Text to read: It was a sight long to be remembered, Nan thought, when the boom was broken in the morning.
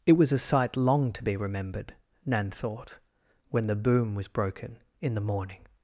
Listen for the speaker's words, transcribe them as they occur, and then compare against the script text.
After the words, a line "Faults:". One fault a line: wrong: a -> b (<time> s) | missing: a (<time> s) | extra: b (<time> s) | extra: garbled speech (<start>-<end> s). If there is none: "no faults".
It was a sight long to be remembered, Nan thought, when the boom was broken in the morning.
Faults:
no faults